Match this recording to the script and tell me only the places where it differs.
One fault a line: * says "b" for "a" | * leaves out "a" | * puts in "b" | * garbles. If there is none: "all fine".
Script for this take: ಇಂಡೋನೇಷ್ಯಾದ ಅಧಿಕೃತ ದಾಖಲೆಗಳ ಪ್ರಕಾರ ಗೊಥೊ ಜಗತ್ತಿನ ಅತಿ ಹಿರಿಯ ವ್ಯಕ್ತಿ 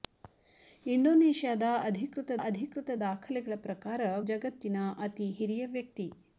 * puts in "ಅಧಿಕೃತ"
* leaves out "ಗೊಥೊ"